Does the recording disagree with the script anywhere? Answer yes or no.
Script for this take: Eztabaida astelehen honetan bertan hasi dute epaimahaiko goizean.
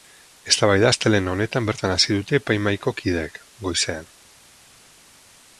yes